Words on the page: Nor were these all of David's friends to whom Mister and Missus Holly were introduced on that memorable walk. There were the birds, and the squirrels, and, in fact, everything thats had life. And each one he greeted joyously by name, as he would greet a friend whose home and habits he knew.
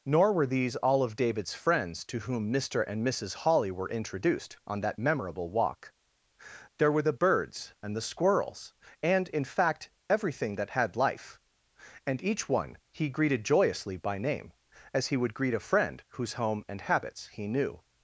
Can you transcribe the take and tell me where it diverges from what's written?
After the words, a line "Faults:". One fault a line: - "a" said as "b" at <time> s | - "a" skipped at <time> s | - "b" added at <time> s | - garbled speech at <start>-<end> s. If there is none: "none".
Nor were these all of David's friends to whom Mister and Missus Holly were introduced on that memorable walk. There were the birds, and the squirrels, and, in fact, everything that had life. And each one he greeted joyously by name, as he would greet a friend whose home and habits he knew.
Faults:
- "thats" said as "that" at 10.6 s